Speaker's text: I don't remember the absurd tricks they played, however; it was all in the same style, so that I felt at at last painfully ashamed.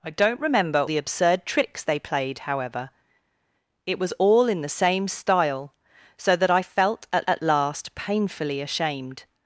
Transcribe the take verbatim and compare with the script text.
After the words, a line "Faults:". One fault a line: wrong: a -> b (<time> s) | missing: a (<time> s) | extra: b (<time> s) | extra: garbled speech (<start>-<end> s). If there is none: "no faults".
I don't remember the absurd tricks they played, however; it was all in the same style, so that I felt at at last painfully ashamed.
Faults:
no faults